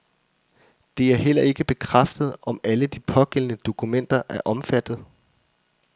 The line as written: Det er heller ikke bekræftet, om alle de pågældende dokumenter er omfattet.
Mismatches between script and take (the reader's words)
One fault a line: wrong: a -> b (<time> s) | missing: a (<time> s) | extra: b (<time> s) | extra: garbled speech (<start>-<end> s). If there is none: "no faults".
no faults